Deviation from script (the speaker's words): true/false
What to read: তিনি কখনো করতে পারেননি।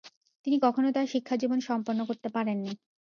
true